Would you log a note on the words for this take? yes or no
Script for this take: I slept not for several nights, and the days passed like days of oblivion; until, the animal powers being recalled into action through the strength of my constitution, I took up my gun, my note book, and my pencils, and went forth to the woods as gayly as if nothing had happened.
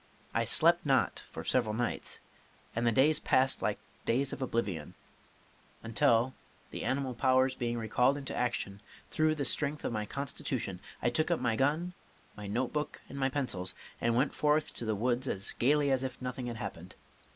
no